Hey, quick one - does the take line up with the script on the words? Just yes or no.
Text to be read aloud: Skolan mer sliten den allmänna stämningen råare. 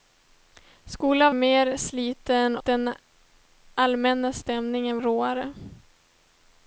yes